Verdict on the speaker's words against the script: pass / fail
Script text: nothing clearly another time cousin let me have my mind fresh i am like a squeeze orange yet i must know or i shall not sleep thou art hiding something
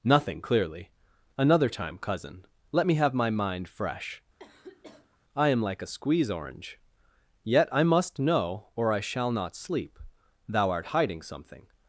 pass